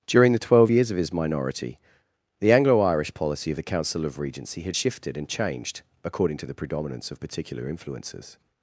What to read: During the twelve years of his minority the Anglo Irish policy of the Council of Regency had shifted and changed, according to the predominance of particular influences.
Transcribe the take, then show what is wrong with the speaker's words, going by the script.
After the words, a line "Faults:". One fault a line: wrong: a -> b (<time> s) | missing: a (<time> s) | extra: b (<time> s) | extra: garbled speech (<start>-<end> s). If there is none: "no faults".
During the twelve years of his minority the Anglo Irish policy of the Council of Regency had shifted and changed, according to the predominance of particular influences.
Faults:
no faults